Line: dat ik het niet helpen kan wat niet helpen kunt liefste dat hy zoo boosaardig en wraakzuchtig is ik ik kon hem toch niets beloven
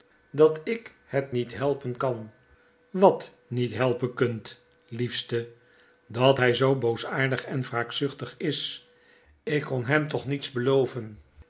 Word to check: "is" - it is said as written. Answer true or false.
true